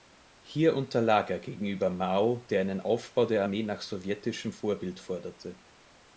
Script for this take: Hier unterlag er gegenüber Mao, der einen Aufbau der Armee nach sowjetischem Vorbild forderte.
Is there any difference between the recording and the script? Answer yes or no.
no